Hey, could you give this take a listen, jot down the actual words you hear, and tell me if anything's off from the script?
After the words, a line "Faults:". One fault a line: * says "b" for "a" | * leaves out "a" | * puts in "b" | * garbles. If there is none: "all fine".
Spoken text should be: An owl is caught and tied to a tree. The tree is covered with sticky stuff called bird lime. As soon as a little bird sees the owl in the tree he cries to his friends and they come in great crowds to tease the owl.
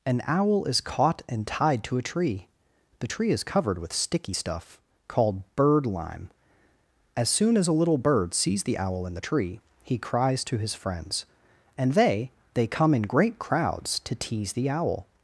An owl is caught and tied to a tree. The tree is covered with sticky stuff called bird lime. As soon as a little bird sees the owl in the tree he cries to his friends and they they come in great crowds to tease the owl.
Faults:
* puts in "they"